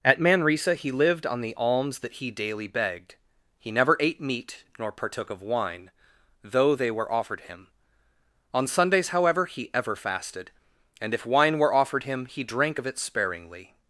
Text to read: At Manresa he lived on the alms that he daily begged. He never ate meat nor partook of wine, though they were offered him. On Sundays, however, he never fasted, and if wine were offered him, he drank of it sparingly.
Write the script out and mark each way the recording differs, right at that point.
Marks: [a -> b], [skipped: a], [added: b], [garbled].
At Manresa he lived on the alms that he daily begged. He never ate meat nor partook of wine, though they were offered him. On Sundays, however, he [never -> ever] fasted, and if wine were offered him, he drank of it sparingly.